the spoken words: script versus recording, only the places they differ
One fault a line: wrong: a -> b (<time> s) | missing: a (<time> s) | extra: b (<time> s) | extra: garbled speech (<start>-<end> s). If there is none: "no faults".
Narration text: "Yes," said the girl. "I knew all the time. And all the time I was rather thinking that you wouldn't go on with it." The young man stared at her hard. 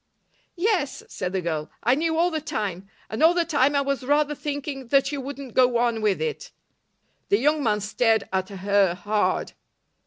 no faults